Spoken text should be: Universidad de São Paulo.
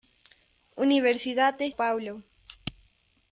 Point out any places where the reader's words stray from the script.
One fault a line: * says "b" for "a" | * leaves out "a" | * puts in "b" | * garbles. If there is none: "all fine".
* leaves out "São"